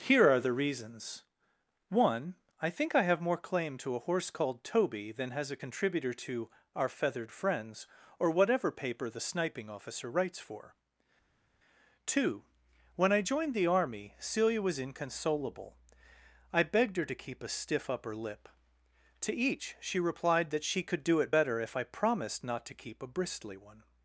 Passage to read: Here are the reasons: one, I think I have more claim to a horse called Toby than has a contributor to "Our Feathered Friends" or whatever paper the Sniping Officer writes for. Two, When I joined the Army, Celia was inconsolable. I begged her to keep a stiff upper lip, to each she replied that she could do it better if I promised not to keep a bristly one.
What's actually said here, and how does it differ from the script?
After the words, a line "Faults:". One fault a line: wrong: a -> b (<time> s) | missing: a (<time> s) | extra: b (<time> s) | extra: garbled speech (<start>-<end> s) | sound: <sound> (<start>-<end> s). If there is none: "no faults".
Here are the reasons: one, I think I have more claim to a horse called Toby than has a contributor to "Our Feathered Friends" or whatever paper the Sniping Officer writes for. Two, When I joined the Army, Celia was inconsolable. I begged her to keep a stiff upper lip, to each she replied that she could do it better if I promised not to keep a bristly one.
Faults:
no faults